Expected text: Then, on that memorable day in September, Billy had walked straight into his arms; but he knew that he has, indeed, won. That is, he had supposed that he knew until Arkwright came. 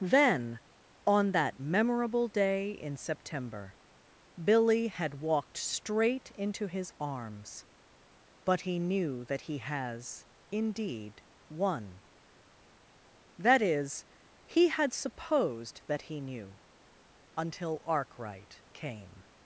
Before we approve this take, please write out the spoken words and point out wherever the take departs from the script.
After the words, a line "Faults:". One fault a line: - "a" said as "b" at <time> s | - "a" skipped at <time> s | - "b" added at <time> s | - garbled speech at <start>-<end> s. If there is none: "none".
Then, on that memorable day in September, Billy had walked straight into his arms; but he knew that he has, indeed, won. That is, he had supposed that he knew until Arkwright came.
Faults:
none